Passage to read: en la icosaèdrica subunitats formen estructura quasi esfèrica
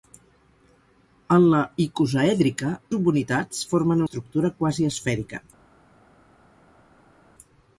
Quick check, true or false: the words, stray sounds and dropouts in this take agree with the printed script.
true